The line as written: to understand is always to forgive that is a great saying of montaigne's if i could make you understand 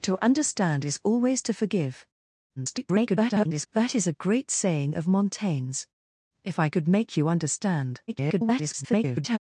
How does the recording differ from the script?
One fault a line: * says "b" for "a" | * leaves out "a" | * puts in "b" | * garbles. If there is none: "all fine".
* garbles
* garbles